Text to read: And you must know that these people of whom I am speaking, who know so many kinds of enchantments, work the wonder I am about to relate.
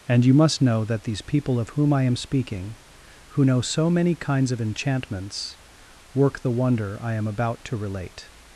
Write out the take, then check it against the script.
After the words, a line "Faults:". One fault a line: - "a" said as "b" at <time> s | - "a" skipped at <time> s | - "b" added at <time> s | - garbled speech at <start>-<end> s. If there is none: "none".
And you must know that these people of whom I am speaking, who know so many kinds of enchantments, work the wonder I am about to relate.
Faults:
none